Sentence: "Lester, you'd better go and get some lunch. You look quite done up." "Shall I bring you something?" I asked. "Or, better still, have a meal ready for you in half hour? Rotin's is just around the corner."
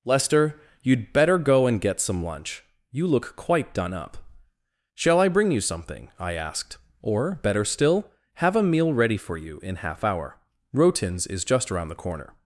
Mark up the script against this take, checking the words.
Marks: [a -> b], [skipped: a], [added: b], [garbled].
"Lester, you'd better go and get some lunch. You look quite done up." "Shall I bring you something?" I asked. "Or, better still, have a meal ready for you in half hour? Rotin's is just around the corner."